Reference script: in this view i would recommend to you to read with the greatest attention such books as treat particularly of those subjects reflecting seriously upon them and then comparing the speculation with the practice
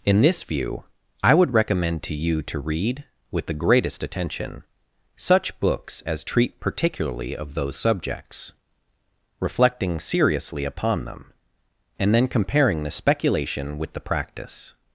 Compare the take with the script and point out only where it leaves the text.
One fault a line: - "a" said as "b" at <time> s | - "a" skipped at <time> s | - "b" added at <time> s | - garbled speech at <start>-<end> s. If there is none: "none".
none